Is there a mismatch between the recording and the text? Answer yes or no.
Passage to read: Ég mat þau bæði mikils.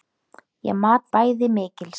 yes